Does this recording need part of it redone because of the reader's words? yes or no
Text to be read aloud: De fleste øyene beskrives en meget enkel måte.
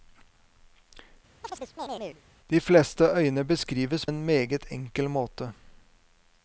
no